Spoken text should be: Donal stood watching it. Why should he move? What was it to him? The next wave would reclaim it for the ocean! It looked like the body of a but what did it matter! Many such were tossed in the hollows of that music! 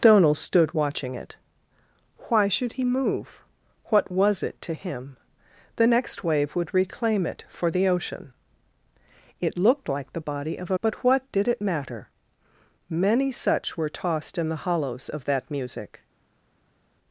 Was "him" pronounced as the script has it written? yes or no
yes